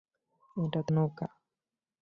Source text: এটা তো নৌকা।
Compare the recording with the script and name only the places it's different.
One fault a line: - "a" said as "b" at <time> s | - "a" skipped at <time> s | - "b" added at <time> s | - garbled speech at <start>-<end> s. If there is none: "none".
none